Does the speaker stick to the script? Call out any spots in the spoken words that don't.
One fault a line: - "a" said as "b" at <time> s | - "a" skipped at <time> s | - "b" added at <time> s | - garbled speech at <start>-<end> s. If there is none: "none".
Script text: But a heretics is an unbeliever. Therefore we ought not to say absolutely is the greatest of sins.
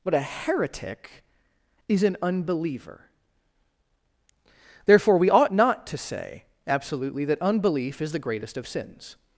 - "heretics" said as "heretic" at 0.2 s
- "that unbelief" added at 7.2 s